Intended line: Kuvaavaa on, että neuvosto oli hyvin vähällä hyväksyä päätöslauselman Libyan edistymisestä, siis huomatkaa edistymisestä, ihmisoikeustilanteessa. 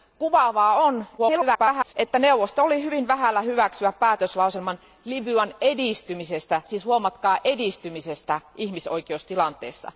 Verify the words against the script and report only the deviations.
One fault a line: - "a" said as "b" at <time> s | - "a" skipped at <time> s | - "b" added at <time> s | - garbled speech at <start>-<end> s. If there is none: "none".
- garbled speech at 1.2-1.9 s